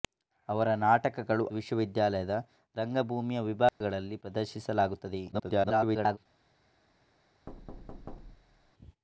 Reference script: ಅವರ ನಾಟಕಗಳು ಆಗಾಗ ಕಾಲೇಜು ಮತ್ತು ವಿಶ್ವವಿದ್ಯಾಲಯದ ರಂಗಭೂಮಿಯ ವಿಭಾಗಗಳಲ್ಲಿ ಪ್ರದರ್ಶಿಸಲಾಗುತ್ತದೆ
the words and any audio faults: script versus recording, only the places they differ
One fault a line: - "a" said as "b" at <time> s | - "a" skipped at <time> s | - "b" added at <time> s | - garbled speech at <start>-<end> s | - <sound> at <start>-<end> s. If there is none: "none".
- "ಆಗಾಗ ಕಾಲೇಜು ಮತ್ತು" skipped at 1.4 s
- dropout at 3.7-3.8 s
- garbled speech at 5.3-6.2 s
- thud at 7.5-8.7 s